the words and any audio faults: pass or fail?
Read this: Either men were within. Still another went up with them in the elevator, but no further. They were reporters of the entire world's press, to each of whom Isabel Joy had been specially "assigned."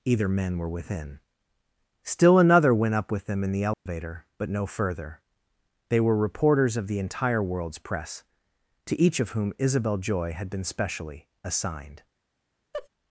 fail